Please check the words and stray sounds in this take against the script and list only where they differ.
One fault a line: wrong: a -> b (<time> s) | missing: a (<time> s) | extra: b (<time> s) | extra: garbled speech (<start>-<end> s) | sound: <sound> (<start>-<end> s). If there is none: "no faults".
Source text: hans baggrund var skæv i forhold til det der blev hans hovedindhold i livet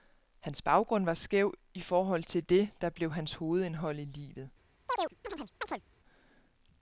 sound: chirp (4.9-5.8 s)